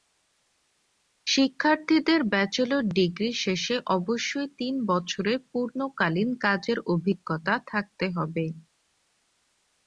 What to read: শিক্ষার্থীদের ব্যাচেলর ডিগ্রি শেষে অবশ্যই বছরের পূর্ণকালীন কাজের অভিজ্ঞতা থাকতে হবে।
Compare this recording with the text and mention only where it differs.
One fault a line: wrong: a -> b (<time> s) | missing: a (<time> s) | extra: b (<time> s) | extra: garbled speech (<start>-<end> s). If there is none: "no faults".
extra: তিন (4.6 s)